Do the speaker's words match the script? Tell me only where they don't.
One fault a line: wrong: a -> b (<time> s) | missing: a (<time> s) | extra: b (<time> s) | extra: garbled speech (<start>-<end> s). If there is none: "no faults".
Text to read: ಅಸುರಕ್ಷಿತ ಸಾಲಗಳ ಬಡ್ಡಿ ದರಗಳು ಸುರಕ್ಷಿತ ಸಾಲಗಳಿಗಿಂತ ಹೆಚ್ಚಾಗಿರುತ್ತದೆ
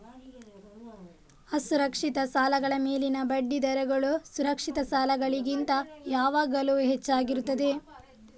extra: ಮೇಲಿನ (2.8 s)
extra: ಯಾವಾಗಲೂ (6.1 s)